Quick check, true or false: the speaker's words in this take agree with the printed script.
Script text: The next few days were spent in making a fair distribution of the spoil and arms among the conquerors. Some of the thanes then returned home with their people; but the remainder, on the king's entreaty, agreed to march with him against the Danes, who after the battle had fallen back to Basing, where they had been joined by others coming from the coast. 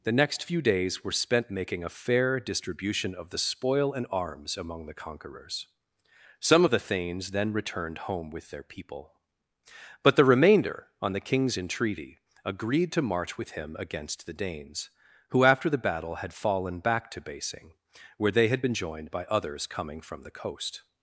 false